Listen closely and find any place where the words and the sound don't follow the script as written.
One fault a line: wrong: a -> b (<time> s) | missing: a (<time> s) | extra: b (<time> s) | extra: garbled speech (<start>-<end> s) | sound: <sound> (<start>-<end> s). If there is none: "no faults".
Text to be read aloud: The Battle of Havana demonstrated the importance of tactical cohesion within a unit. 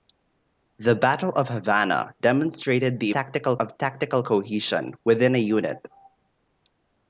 wrong: importance -> tactical (3.1 s)